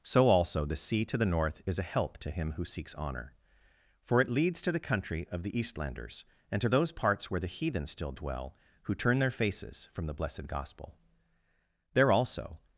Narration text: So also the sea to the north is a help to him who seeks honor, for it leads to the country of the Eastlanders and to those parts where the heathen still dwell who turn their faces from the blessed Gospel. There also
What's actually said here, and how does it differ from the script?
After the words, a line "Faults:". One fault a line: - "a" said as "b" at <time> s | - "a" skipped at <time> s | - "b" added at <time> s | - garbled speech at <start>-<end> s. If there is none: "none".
So also the sea to the north is a help to him who seeks honor, for it leads to the country of the Eastlanders and to those parts where the heathen still dwell who turn their faces from the blessed Gospel. There also
Faults:
none